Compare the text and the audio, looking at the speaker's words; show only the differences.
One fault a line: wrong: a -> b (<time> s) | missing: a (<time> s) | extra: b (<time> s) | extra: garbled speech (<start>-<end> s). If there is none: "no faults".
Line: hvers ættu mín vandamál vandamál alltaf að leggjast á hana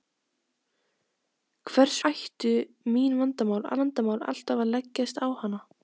no faults